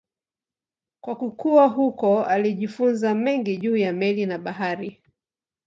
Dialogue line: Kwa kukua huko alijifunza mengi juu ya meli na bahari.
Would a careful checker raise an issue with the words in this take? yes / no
no